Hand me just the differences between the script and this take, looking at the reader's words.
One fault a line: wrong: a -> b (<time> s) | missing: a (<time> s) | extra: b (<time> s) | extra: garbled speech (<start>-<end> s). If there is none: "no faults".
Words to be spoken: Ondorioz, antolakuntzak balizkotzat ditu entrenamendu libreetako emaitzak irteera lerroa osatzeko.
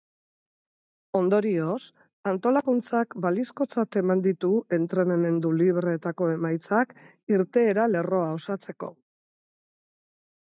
extra: eman (4.0 s)